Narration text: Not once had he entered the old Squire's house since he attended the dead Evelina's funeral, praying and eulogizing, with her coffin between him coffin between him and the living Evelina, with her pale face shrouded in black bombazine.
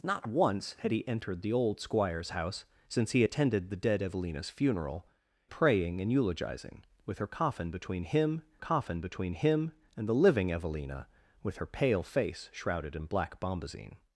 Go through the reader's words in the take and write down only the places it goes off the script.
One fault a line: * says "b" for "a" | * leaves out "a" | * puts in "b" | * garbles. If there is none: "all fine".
all fine